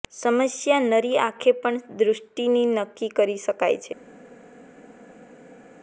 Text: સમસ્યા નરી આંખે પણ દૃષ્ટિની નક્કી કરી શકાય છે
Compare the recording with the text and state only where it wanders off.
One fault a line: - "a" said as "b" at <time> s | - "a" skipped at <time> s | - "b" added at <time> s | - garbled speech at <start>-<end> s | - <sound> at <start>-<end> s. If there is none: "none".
none